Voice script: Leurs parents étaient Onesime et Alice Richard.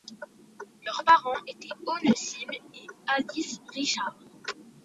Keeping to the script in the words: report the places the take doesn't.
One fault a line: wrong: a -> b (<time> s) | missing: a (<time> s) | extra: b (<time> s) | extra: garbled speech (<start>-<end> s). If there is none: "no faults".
no faults